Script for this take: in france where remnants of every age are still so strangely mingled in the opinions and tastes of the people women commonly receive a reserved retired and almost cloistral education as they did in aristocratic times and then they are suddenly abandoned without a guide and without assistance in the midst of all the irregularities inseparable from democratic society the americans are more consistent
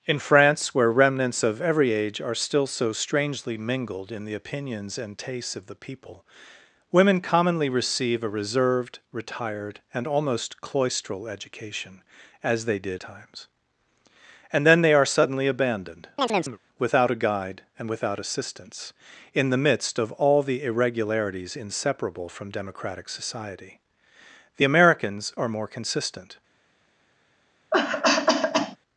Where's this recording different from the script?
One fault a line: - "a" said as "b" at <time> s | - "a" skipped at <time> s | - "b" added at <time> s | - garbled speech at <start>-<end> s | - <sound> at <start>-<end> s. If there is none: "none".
- "in aristocratic" skipped at 13.0 s
- chirp at 16.2-16.6 s
- cough at 27.7-28.8 s